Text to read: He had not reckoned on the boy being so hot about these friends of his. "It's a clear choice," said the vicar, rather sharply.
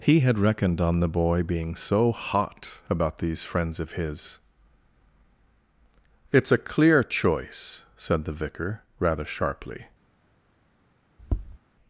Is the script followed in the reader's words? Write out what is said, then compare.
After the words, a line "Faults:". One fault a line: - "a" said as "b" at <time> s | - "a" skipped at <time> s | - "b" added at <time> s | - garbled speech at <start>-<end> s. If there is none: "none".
He had reckoned on the boy being so hot about these friends of his. "It's a clear choice," said the vicar, rather sharply.
Faults:
- "not" skipped at 0.4 s